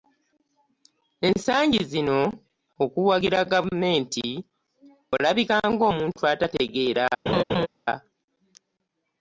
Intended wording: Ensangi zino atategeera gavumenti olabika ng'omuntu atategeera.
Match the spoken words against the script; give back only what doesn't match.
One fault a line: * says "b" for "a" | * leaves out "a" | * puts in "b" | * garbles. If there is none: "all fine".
* says "okuwagira" for "atategeera"